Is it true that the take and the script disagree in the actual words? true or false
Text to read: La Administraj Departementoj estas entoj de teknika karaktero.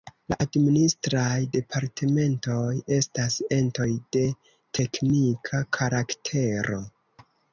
false